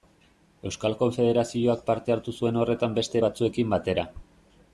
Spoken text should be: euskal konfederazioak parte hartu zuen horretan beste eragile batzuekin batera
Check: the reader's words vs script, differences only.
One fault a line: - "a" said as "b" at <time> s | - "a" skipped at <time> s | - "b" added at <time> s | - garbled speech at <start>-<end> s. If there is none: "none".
- "eragile" skipped at 3.2 s